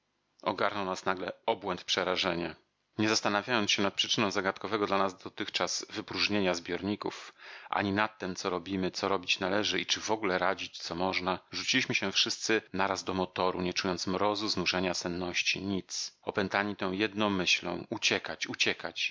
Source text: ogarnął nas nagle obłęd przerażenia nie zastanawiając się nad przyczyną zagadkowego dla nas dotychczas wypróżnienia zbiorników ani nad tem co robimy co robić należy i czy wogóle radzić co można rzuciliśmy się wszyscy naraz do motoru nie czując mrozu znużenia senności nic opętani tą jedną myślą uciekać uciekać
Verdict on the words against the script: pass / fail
pass